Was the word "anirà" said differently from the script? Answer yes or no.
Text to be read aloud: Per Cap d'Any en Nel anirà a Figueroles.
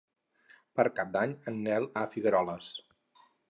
yes